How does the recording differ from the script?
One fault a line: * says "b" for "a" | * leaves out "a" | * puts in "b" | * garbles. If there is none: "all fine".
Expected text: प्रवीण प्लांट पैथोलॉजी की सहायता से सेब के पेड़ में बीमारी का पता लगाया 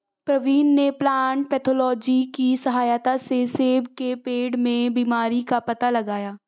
* puts in "ने"